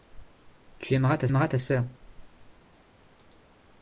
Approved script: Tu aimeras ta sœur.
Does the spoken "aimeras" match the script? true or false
true